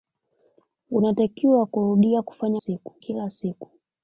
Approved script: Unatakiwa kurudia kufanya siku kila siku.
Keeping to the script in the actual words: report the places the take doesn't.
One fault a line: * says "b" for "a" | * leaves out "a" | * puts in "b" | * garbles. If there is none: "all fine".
all fine